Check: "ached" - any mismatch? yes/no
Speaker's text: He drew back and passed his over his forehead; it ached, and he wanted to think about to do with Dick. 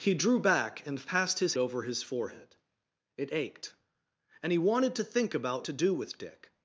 no